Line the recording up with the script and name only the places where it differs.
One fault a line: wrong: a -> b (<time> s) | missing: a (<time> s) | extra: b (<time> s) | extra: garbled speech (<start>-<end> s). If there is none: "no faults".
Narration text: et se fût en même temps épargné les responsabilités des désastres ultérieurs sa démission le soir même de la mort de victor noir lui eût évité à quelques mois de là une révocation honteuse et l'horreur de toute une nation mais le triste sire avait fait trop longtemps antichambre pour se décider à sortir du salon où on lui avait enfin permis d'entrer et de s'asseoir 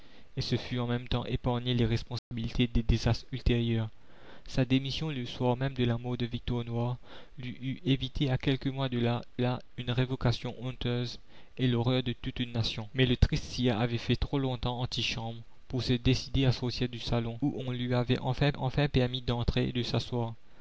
extra: là (9.4 s)
extra: enfin (18.6 s)